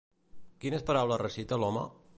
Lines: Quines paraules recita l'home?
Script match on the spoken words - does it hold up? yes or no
yes